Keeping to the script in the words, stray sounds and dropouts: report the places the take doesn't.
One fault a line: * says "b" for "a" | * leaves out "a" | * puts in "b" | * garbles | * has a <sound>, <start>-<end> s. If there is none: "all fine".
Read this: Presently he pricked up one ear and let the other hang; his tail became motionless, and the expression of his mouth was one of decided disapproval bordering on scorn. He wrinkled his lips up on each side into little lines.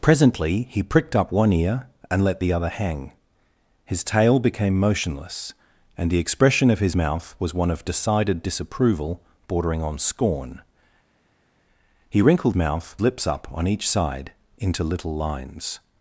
* says "mouth" for "his"